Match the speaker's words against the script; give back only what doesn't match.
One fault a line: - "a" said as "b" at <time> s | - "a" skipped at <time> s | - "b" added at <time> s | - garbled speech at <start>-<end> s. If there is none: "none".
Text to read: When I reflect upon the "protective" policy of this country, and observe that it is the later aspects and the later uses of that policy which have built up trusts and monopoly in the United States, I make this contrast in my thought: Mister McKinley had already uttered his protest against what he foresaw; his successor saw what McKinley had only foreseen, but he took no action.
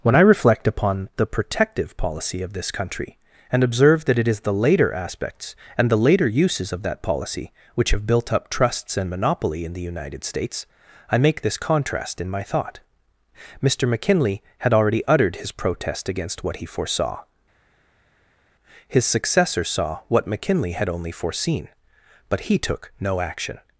none